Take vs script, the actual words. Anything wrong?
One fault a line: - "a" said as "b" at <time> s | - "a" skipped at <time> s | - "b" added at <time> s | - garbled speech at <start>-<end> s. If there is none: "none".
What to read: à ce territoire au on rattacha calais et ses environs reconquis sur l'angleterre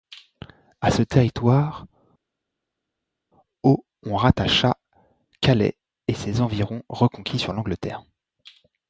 none